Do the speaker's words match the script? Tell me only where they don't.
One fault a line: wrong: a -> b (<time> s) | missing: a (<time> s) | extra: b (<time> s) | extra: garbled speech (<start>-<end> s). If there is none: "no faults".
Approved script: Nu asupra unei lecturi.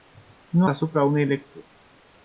no faults